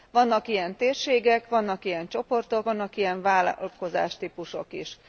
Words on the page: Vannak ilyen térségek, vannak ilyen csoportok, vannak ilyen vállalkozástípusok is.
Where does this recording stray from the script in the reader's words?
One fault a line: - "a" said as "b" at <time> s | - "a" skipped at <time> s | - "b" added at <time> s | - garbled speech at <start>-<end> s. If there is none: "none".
none